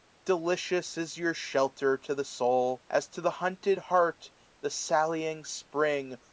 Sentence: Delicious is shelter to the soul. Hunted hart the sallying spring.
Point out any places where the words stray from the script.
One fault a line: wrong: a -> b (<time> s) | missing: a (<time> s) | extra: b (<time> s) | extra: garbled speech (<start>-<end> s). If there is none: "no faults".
extra: your (1.1 s)
extra: As to the (2.9 s)